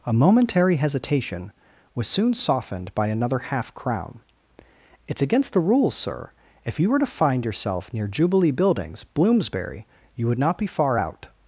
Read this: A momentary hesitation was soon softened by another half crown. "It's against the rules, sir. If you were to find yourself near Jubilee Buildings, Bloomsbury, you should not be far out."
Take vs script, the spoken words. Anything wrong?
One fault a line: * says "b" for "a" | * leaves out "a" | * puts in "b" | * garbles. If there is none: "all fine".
* says "would" for "should"